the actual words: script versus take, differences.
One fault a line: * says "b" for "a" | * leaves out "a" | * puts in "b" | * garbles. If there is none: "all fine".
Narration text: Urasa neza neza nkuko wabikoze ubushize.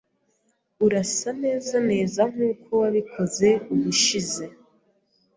all fine